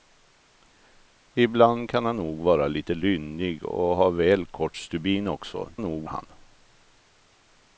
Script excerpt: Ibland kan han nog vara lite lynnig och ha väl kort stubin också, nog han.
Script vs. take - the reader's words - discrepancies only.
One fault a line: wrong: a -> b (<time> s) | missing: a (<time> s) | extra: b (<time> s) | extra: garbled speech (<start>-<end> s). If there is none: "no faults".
no faults